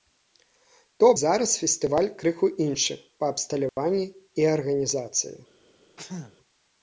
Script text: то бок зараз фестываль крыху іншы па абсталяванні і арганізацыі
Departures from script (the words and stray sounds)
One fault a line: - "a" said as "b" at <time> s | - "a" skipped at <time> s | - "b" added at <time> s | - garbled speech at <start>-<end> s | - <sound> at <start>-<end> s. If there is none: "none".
- "бок" skipped at 1.1 s
- dropout at 3.7-3.8 s
- sneeze at 6.0-6.4 s